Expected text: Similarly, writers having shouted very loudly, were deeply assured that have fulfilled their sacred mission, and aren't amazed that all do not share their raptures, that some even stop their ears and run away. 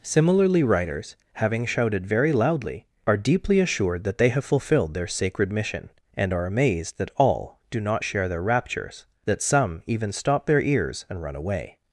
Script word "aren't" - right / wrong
wrong